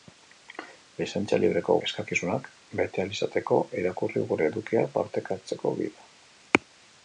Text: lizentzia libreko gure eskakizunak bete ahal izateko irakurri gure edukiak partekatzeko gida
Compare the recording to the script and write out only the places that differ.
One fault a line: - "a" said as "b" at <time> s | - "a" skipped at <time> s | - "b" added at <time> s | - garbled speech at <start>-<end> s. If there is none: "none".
- "gure" skipped at 1.8 s